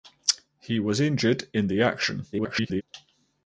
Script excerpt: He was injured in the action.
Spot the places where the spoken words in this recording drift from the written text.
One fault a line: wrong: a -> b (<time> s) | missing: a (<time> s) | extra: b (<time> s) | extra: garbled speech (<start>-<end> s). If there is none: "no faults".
extra: garbled speech (2.3-2.8 s)